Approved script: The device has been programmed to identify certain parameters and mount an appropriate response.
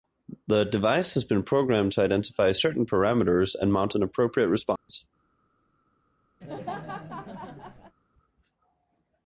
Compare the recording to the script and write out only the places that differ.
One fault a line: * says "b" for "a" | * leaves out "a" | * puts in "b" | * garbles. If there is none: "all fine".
all fine